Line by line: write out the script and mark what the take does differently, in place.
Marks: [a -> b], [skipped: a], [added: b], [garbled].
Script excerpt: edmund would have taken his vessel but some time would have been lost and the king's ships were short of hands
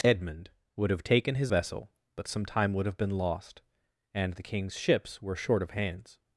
edmund would have taken his vessel but some time would have been lost and the king's ships were short of hands